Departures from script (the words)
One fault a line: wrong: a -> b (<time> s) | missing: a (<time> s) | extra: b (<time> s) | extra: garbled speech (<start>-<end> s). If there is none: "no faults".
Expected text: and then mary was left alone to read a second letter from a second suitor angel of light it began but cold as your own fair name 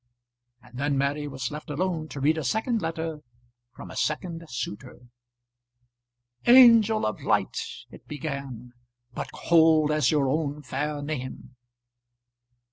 no faults